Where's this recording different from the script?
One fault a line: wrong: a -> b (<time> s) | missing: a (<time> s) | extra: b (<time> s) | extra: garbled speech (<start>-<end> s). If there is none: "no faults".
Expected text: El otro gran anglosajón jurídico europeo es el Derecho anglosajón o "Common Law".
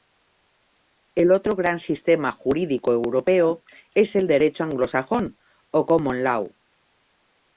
wrong: anglosajón -> sistema (1.8 s)